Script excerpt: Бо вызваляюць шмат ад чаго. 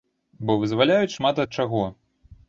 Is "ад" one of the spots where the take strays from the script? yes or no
no